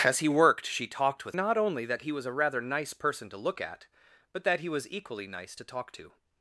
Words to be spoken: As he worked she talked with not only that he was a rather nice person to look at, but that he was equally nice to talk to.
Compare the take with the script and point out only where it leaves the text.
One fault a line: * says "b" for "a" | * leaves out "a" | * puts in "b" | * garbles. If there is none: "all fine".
all fine